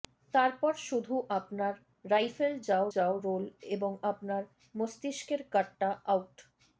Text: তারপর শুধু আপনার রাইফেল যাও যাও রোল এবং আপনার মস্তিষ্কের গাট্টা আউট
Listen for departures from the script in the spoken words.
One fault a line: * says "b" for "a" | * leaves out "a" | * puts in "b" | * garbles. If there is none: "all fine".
all fine